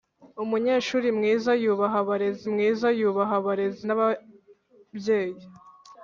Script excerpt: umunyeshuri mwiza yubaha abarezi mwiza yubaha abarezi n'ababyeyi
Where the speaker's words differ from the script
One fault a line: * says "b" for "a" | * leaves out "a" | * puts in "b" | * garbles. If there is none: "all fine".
all fine